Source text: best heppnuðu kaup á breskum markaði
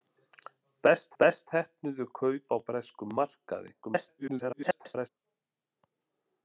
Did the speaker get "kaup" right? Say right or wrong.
right